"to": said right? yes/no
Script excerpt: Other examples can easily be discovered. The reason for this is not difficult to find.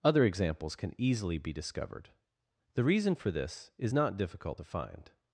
yes